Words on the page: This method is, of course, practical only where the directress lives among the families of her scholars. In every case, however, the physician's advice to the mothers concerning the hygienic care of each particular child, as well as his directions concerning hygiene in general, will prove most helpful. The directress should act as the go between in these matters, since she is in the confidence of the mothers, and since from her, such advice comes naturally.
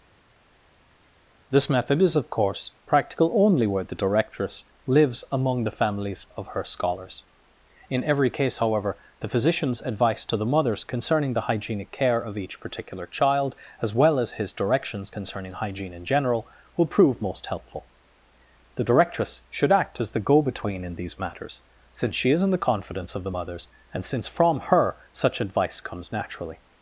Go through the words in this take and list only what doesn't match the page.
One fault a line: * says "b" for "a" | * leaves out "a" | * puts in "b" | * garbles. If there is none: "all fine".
all fine